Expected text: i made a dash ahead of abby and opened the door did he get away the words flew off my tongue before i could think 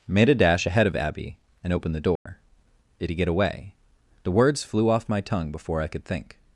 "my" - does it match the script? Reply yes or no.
yes